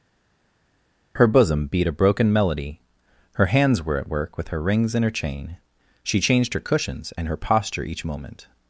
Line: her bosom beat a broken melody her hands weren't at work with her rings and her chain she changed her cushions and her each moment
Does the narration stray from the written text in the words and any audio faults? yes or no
yes